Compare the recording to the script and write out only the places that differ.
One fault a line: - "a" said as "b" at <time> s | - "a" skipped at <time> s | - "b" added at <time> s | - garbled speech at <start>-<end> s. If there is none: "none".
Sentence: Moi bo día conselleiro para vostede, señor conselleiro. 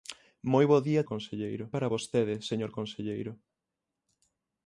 none